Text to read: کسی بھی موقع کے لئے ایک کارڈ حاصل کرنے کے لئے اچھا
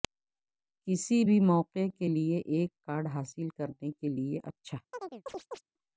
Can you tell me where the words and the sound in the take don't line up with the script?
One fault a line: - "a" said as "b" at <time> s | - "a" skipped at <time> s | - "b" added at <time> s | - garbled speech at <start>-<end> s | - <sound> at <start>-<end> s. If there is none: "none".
- chirp at 4.9-5.6 s